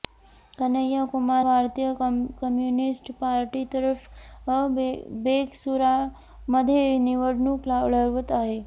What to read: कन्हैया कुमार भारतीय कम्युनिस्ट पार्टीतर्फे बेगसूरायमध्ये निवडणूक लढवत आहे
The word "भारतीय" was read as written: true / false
true